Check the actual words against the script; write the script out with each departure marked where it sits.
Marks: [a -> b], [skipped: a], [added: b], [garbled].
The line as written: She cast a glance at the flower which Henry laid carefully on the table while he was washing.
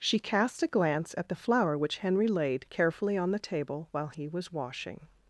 She cast a glance at the flower which Henry laid carefully on the table while he was washing.